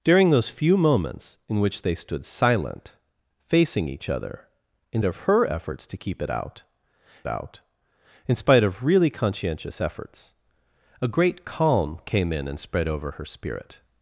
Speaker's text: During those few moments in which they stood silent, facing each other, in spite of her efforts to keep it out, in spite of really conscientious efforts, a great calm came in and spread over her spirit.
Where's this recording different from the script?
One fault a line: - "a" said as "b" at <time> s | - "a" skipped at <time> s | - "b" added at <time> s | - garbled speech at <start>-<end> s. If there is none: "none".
- "spite" skipped at 5.0 s
- "out" added at 7.3 s